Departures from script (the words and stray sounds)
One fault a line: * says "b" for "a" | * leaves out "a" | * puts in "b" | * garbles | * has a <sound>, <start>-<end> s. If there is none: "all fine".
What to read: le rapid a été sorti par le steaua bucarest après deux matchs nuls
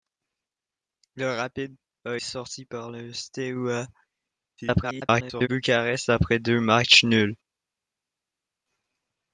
* leaves out "été"
* garbles